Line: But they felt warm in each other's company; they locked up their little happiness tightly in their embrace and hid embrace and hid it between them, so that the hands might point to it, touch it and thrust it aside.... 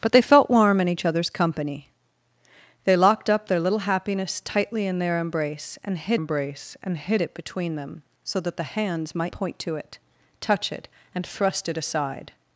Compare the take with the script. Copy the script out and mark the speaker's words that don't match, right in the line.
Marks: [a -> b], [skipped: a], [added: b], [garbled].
But they felt warm in each other's company; they locked up their little happiness tightly in their embrace and hid embrace and hid it between them, so that the hands might point to it, touch it and thrust it aside....